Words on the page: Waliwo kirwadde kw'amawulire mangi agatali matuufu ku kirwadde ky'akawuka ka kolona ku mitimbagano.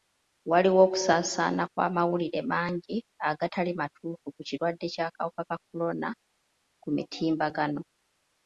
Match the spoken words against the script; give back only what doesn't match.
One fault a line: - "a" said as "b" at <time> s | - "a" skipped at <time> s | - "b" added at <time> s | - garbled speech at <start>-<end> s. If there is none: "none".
- "kirwadde" said as "okusaasaana" at 0.9 s